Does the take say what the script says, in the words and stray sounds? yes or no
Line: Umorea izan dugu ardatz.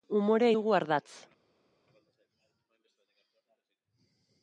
no